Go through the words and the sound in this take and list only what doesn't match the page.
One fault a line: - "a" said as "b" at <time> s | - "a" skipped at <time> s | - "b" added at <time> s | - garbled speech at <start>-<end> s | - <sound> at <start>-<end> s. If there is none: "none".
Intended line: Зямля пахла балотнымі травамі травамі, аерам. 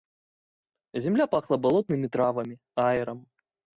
- "травамі" skipped at 2.5 s